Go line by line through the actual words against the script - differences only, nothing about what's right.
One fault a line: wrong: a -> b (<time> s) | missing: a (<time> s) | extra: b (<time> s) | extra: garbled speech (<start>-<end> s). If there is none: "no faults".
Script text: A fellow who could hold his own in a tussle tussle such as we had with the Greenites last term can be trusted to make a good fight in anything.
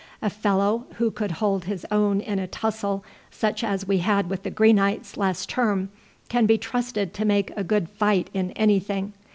missing: tussle (3.0 s)